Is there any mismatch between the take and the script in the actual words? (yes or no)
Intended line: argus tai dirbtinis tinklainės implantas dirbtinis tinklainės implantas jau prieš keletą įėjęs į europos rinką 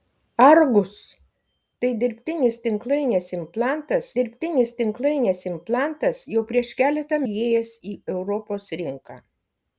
no